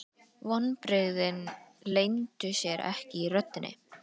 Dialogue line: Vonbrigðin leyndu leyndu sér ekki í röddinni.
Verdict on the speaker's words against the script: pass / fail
fail